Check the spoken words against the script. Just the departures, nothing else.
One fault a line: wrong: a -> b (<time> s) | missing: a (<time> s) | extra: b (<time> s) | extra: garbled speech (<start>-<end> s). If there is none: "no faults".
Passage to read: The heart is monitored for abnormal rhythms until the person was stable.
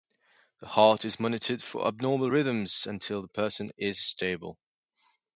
wrong: was -> is (3.8 s)